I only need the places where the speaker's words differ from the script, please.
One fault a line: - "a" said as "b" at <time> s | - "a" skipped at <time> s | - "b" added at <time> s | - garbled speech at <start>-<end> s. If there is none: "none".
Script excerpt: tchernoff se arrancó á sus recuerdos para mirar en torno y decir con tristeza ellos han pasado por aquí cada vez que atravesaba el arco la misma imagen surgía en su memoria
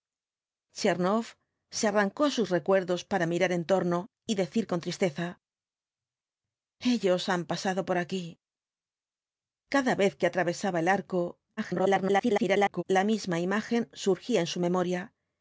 - garbled speech at 11.6-12.8 s